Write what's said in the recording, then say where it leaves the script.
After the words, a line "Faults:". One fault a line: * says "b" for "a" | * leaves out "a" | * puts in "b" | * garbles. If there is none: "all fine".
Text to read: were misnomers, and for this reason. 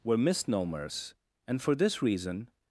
were misnomers, and for this reason.
Faults:
all fine